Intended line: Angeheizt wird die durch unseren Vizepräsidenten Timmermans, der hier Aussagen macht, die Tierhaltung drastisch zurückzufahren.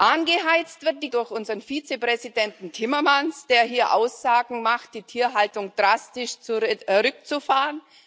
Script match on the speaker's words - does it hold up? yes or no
yes